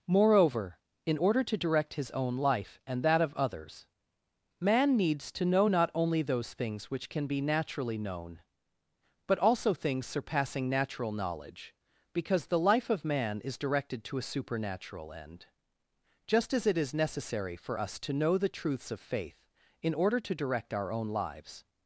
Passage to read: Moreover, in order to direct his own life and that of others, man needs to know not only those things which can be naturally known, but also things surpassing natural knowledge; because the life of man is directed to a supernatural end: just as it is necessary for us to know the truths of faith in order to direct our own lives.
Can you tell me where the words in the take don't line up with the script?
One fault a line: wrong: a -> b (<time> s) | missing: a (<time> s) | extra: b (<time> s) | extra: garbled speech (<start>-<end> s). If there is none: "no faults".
no faults